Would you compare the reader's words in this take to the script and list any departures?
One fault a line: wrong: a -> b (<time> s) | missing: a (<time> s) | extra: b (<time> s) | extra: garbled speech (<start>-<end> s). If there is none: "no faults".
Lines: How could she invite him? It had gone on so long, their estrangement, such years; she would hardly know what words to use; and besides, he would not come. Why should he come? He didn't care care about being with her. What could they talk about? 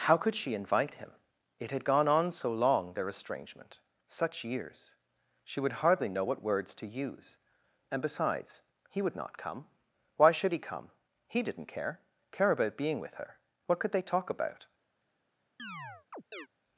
no faults